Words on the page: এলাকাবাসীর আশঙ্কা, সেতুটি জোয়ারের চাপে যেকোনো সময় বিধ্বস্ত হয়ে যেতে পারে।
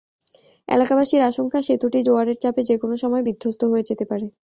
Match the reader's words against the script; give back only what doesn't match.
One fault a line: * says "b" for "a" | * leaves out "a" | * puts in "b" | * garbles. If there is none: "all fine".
all fine